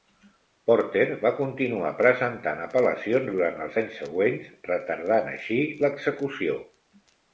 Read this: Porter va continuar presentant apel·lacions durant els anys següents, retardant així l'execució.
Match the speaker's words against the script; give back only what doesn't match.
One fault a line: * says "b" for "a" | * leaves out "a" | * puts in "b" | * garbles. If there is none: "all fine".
all fine